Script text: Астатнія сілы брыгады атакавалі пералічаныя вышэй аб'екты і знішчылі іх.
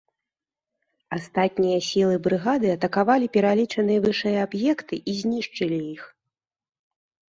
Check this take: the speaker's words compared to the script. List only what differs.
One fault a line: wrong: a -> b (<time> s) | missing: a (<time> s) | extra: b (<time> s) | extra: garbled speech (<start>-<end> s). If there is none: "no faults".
no faults